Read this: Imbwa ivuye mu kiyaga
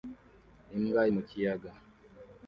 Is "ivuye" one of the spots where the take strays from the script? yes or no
yes